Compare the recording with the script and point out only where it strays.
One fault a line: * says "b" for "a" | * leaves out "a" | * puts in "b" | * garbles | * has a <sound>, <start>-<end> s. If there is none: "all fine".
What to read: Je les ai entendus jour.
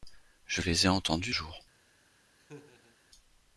* has a laugh, 2.4-3.0 s